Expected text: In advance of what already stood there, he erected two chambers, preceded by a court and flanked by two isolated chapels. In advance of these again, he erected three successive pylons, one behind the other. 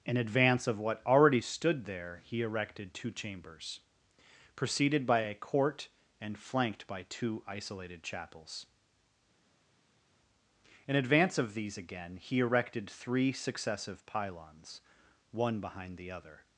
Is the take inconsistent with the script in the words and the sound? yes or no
no